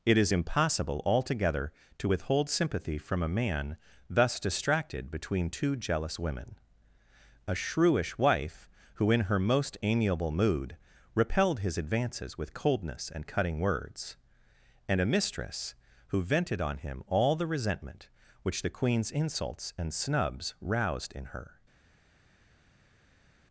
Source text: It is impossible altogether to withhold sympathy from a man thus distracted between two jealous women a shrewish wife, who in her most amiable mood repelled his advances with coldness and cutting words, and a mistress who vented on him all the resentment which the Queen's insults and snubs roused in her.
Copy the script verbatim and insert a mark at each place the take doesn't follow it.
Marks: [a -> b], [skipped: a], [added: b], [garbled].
It is impossible altogether to withhold sympathy from a man thus distracted between two jealous women a shrewish wife, who in her most amiable mood repelled his advances with coldness and cutting words, and a mistress who vented on him all the resentment which the Queen's insults and snubs roused in her.